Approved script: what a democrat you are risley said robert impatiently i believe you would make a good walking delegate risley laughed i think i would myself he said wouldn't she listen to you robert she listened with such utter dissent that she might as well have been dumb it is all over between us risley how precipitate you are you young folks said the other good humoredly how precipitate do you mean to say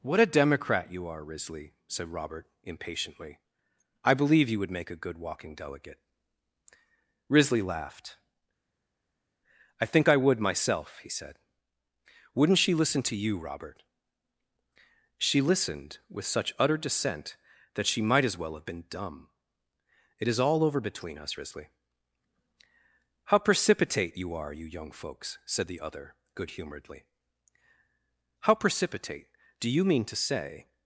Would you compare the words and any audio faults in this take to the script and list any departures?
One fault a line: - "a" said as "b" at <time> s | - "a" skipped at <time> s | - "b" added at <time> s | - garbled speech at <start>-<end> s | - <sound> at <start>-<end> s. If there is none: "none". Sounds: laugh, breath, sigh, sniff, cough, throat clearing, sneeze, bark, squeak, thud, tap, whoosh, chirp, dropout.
none